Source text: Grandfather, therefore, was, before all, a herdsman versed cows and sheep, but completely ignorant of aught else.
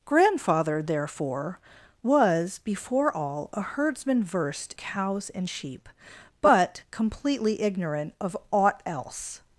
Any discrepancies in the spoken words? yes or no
no